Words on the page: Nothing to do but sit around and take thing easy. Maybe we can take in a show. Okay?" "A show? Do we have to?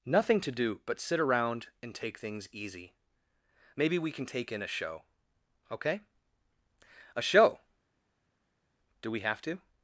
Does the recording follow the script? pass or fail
fail